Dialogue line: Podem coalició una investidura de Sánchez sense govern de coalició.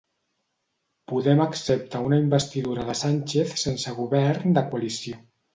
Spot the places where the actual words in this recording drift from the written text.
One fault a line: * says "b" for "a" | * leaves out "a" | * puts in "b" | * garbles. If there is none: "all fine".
* says "accepta" for "coalició"